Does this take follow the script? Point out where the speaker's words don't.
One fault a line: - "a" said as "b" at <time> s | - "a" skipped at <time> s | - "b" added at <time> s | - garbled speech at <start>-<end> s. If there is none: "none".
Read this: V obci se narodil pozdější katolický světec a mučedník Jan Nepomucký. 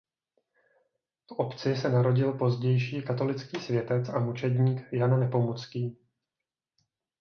none